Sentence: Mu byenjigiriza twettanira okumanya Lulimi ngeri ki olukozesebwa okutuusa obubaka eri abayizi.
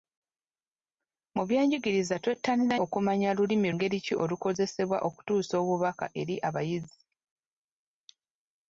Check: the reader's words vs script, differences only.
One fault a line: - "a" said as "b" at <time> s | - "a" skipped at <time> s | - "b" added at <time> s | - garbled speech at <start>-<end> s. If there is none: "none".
none